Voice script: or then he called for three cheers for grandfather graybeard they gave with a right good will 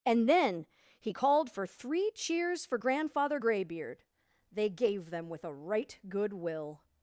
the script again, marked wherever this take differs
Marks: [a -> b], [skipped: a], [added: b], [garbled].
[or -> and] then he called for three cheers for grandfather graybeard they gave [added: them] with a right good will